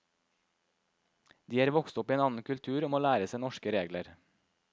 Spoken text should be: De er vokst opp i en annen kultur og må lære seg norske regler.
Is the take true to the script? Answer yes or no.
yes